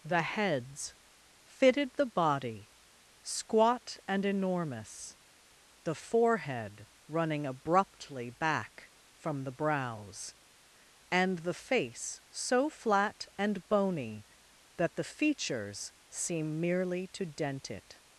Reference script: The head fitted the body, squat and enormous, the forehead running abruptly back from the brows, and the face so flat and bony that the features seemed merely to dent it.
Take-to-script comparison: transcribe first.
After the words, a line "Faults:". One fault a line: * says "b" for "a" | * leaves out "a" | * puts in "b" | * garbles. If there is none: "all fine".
The heads fitted the body, squat and enormous, the forehead running abruptly back from the brows, and the face so flat and bony that the features seem merely to dent it.
Faults:
* says "heads" for "head"
* says "seem" for "seemed"